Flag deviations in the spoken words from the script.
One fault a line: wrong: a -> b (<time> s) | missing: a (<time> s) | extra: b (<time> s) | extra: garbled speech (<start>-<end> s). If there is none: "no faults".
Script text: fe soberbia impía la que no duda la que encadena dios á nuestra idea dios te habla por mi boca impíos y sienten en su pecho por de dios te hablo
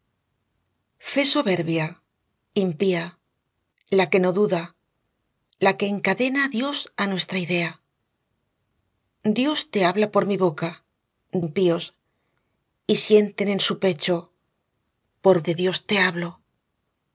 no faults